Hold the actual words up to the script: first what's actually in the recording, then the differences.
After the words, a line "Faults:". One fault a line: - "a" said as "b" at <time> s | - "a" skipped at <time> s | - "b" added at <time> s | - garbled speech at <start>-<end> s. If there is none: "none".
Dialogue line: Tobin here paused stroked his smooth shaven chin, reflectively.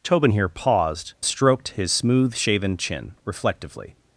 Tobin here paused stroked his smooth shaven chin, reflectively.
Faults:
none